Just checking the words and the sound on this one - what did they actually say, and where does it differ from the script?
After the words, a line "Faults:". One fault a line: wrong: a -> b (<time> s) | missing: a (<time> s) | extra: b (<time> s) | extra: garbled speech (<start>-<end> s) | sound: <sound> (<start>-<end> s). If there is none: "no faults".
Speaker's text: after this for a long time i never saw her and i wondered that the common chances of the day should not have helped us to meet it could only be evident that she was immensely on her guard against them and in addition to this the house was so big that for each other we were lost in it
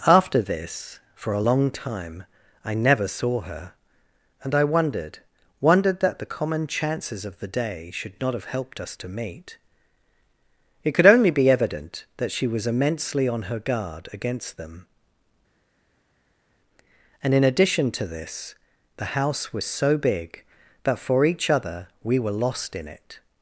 after this for a long time i never saw her and i wondered wondered that the common chances of the day should not have helped us to meet it could only be evident that she was immensely on her guard against them and in addition to this the house was so big that for each other we were lost in it
Faults:
extra: wondered (5.6 s)